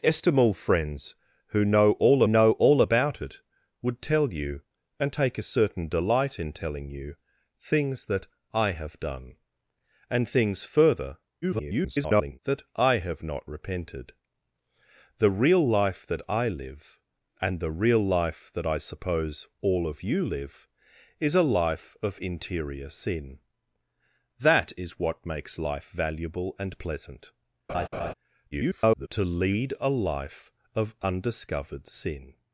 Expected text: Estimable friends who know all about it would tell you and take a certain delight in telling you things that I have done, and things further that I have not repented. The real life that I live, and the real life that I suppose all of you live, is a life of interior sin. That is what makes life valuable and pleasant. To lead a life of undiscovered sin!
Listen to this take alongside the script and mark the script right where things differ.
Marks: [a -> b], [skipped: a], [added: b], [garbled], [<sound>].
Estimable friends who know all [added: know all] about it would tell you and take a certain delight in telling you things that I have done, and things further [garbled] that I have not repented. The real life that I live, and the real life that I suppose all of you live, is a life of interior sin. That is what makes life valuable and pleasant. [laugh] [garbled] To lead a life of undiscovered sin!